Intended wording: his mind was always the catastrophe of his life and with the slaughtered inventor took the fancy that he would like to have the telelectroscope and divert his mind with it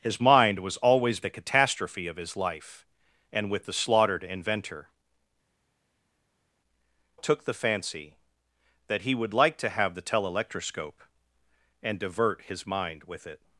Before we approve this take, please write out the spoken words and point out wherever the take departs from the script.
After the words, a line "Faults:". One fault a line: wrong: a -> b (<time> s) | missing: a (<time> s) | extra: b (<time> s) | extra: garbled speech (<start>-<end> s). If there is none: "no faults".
his mind was always the catastrophe of his life and with the slaughtered inventor took the fancy that he would like to have the telelectroscope and divert his mind with it
Faults:
no faults